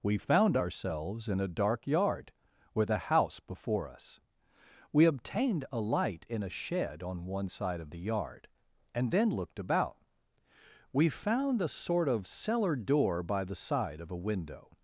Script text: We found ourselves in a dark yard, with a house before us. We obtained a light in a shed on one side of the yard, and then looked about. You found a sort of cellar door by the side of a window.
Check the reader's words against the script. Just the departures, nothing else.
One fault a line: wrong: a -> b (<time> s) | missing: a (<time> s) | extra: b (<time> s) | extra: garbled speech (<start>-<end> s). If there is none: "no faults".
wrong: You -> We (10.9 s)